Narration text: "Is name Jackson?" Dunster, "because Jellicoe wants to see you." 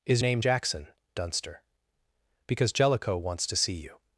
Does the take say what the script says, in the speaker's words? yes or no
yes